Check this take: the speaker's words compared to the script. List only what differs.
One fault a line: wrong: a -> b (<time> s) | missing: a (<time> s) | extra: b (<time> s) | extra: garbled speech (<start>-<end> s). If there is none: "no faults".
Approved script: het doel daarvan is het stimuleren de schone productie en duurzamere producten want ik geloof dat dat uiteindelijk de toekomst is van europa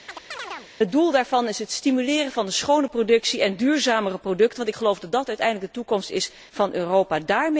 extra: van (2.3 s)